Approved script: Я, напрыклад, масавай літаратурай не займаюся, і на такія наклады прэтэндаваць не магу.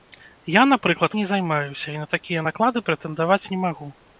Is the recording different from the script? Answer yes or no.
yes